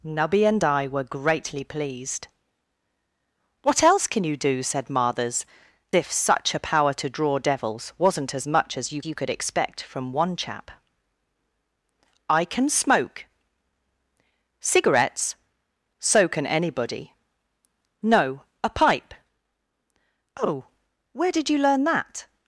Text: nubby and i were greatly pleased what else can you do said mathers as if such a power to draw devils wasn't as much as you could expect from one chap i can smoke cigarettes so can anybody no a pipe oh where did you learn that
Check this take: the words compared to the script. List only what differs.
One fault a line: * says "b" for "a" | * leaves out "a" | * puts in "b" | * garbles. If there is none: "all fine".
* leaves out "as"
* puts in "you"